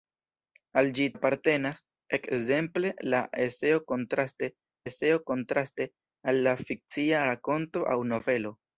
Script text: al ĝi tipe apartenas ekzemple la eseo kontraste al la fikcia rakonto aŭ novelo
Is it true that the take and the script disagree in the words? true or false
true